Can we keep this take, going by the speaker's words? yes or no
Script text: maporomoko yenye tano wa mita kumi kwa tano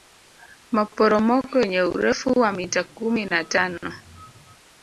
no